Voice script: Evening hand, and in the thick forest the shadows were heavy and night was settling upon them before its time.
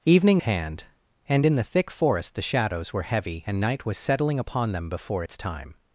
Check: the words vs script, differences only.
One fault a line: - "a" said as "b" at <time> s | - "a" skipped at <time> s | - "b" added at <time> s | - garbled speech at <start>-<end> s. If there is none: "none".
none